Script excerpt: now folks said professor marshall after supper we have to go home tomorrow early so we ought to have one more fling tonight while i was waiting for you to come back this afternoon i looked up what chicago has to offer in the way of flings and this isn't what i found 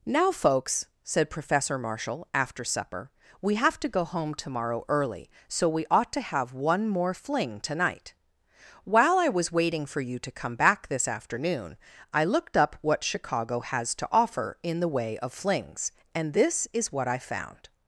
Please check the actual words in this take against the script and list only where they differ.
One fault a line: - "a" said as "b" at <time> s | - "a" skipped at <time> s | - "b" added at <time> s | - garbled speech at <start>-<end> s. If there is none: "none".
- "isn't" said as "is" at 16.7 s